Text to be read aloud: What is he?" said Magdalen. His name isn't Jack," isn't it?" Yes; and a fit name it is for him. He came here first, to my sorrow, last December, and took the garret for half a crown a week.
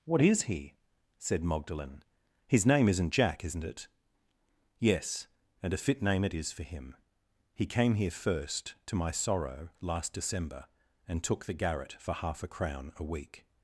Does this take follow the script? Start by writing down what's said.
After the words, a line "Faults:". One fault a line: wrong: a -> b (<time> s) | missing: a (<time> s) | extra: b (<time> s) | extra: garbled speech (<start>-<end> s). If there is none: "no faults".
What is he?" said Magdalen. His name isn't Jack," isn't it?" Yes; and a fit name it is for him. He came here first, to my sorrow, last December, and took the garret for half a crown a week.
Faults:
no faults